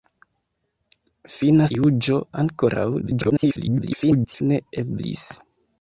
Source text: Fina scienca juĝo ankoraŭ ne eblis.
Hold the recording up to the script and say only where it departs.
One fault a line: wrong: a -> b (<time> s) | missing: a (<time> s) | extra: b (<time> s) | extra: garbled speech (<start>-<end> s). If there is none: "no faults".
missing: scienca (1.7 s)
extra: garbled speech (3.0-4.4 s)